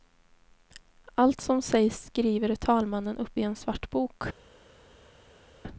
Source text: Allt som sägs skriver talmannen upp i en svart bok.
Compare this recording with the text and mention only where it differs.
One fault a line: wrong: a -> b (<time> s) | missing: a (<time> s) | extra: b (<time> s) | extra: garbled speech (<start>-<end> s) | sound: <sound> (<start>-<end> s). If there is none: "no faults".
no faults